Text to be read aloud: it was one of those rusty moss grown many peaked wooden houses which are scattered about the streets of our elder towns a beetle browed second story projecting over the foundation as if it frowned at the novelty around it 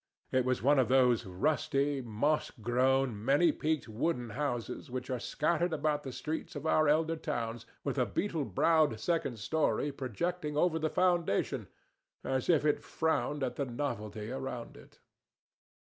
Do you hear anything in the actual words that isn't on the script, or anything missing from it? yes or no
yes